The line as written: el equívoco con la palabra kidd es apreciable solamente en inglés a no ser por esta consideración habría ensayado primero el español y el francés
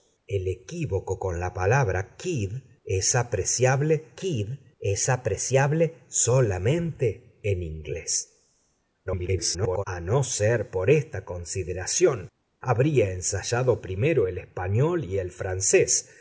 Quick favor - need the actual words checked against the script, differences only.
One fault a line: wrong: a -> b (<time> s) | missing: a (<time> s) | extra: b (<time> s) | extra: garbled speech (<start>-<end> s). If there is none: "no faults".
extra: kidd es apreciable (4.2 s)
extra: garbled speech (9.1-9.8 s)